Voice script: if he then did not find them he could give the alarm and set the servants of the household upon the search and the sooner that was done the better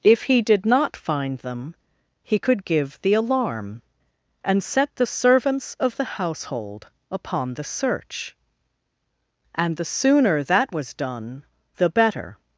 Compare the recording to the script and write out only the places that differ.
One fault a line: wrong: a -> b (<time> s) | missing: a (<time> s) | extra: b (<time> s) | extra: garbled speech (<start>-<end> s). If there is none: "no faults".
missing: then (0.4 s)